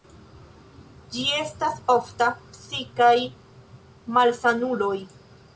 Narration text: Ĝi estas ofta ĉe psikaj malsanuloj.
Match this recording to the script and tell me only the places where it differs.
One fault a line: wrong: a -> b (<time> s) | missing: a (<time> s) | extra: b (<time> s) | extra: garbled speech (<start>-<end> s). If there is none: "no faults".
missing: ĉe (2.3 s)